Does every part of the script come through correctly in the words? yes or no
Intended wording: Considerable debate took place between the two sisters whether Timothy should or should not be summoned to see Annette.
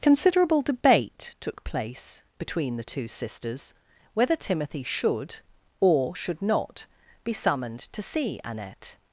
yes